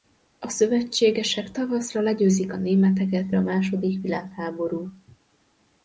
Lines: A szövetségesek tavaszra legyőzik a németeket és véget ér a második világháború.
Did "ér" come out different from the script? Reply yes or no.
yes